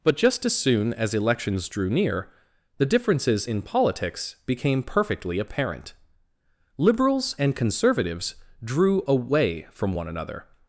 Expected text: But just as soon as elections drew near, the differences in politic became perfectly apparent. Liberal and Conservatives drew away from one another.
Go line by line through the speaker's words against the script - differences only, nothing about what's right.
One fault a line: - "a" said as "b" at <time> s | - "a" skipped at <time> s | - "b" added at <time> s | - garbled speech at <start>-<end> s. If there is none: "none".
- "politic" said as "politics" at 3.6 s
- "Liberal" said as "Liberals" at 6.8 s